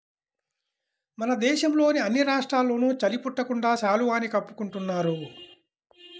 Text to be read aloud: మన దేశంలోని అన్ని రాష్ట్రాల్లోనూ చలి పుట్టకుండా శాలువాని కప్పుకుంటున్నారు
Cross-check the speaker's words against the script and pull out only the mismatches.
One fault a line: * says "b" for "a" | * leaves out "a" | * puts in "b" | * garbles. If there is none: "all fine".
all fine